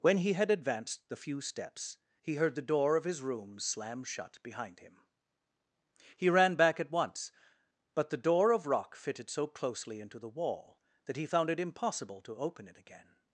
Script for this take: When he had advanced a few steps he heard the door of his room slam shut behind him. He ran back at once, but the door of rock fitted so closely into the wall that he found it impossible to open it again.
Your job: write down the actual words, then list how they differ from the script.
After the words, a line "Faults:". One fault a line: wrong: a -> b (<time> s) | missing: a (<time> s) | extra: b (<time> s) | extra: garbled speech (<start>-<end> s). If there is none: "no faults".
When he had advanced the few steps he heard the door of his room slam shut behind him. He ran back at once, but the door of rock fitted so closely into the wall that he found it impossible to open it again.
Faults:
wrong: a -> the (1.1 s)